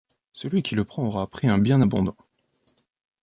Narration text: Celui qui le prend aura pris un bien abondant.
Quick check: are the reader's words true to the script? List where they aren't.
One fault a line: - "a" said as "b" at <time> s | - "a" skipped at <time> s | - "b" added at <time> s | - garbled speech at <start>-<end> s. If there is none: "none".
none